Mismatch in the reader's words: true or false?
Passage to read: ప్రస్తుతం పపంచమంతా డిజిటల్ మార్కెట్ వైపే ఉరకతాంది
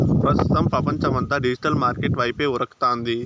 false